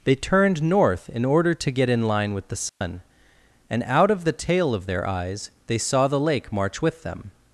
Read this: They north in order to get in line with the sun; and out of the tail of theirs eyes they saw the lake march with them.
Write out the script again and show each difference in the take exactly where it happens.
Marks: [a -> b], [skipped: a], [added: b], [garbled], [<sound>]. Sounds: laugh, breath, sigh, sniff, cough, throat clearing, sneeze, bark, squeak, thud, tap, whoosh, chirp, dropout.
They [added: turned] north in order to get in line with the sun; [dropout] and out of the tail of [theirs -> their] eyes they saw the lake march with them.